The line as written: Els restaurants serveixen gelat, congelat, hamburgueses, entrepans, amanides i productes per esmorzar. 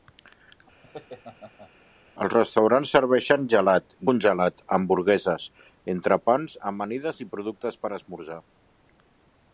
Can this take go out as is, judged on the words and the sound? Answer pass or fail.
fail